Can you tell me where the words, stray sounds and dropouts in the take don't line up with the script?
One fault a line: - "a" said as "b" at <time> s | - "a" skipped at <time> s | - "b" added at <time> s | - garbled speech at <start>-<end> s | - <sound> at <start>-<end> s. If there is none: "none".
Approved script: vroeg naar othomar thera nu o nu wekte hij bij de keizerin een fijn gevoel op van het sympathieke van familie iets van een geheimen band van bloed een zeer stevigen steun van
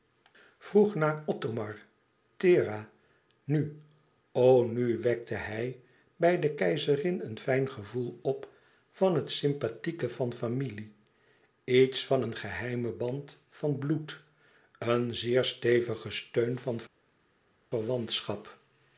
none